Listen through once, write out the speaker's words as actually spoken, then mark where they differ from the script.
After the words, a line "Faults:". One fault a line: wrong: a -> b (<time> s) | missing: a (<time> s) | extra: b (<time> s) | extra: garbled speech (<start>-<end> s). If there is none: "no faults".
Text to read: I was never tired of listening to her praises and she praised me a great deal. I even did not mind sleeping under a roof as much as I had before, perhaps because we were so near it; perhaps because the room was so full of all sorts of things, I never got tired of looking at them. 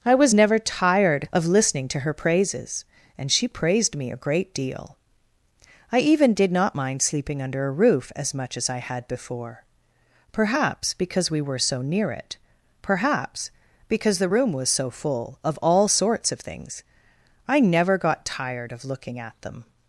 I was never tired of listening to her praises and she praised me a great deal. I even did not mind sleeping under a roof as much as I had before, perhaps because we were so near it; perhaps because the room was so full of all sorts of things, I never got tired of looking at them.
Faults:
no faults